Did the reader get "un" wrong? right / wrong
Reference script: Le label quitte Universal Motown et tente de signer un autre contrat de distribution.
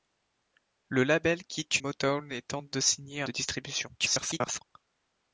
wrong